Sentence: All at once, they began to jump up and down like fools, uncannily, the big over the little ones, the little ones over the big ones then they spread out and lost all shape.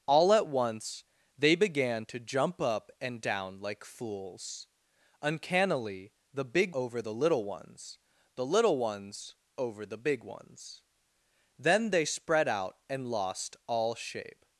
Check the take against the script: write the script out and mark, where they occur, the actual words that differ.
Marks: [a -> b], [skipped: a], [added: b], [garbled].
All at once, they began to jump up and down like fools, uncannily, the big over the little ones, the little ones over the big ones then they spread out and lost all shape.